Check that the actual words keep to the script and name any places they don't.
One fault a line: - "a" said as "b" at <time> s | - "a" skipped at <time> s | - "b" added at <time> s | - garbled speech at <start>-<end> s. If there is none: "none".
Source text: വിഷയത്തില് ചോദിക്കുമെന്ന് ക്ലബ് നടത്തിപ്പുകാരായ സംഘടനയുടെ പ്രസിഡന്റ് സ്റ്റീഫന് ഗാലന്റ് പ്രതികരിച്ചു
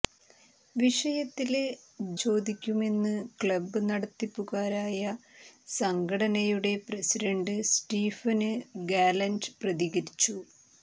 none